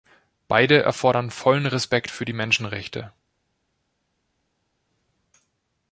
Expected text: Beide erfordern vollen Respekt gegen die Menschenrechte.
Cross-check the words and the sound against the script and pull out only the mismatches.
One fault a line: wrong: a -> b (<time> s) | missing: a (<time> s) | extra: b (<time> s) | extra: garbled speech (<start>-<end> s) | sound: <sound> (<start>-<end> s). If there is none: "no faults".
wrong: gegen -> für (2.1 s)